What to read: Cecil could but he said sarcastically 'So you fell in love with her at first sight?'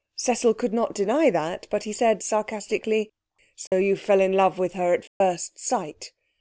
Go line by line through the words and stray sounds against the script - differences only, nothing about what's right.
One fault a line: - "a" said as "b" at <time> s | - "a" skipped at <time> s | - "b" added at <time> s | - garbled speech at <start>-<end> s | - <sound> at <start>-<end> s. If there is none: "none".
- "not deny that" added at 0.7 s
- dropout at 3.7-3.7 s
- dropout at 5.1-5.2 s